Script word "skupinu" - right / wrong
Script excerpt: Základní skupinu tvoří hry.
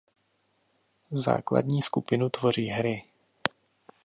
right